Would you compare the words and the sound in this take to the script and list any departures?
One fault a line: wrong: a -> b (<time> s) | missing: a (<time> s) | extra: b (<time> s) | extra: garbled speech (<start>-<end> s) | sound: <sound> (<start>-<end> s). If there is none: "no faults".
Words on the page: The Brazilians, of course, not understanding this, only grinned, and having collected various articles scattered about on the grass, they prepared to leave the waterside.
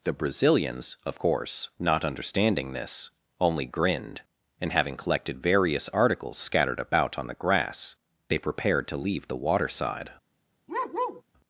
sound: bark (10.7-11.2 s)